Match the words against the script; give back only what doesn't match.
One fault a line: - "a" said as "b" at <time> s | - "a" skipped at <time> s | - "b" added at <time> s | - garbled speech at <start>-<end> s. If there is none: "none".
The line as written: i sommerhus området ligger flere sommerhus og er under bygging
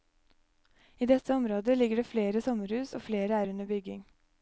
- "sommerhus" said as "dette" at 1.1 s
- "det" added at 1.9 s
- "flere" added at 3.0 s